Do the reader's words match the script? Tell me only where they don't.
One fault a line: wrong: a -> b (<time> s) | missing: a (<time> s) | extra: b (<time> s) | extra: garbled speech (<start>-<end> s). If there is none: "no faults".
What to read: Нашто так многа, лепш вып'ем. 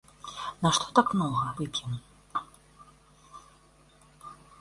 missing: лепш (1.5 s)